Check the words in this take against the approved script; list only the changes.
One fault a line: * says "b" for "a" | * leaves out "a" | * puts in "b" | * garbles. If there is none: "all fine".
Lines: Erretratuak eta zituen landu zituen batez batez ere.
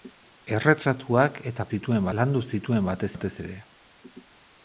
all fine